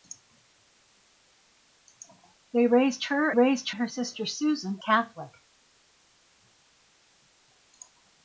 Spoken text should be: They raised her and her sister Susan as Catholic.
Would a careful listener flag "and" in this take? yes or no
yes